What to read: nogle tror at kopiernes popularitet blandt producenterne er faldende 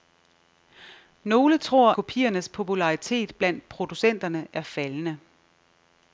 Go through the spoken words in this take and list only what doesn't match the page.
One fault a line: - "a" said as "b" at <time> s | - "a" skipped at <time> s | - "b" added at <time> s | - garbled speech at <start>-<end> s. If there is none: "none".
- "at" skipped at 1.9 s